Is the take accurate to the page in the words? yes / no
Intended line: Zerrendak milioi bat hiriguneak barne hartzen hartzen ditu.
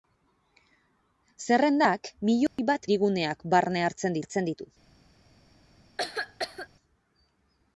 yes